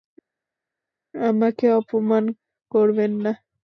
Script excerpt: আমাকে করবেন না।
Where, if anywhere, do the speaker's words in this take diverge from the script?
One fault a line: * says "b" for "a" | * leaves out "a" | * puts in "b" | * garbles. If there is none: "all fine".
* puts in "অপমান"